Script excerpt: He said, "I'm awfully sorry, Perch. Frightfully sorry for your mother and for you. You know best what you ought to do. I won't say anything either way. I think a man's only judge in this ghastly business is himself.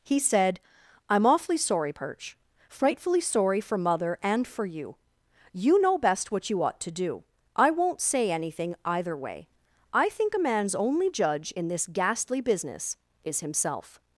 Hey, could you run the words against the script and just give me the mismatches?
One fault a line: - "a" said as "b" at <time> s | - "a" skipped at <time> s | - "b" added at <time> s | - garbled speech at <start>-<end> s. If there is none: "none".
- "your" skipped at 3.8 s